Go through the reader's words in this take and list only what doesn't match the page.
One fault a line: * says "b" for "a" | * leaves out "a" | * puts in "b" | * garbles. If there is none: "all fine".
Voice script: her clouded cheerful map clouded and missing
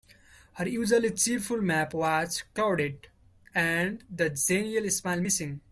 * says "usually" for "clouded"
* puts in "was"
* puts in "the genial smile"